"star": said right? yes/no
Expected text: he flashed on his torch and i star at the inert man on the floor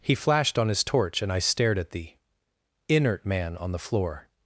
no